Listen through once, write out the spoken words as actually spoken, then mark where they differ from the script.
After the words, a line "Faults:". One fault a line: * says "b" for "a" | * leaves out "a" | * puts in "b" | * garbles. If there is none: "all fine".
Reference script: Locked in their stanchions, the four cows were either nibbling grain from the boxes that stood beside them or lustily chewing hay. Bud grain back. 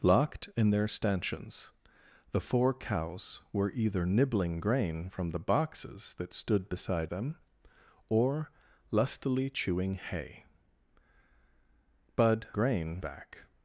Locked in their stanchions, the four cows were either nibbling grain from the boxes that stood beside them or lustily chewing hay. Bud grain back.
Faults:
all fine